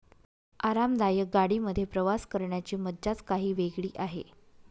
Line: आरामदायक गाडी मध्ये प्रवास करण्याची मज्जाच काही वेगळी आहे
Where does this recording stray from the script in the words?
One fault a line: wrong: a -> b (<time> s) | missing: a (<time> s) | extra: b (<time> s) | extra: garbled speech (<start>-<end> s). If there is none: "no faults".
no faults